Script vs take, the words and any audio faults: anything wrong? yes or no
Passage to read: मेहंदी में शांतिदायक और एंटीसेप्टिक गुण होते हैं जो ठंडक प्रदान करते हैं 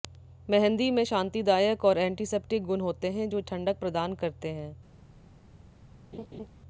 yes